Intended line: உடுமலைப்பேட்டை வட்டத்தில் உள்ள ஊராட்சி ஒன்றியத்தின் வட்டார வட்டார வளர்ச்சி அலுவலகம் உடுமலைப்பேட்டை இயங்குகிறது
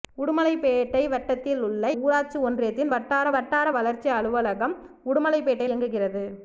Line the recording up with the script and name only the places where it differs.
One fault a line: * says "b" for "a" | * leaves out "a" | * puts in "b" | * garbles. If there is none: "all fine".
all fine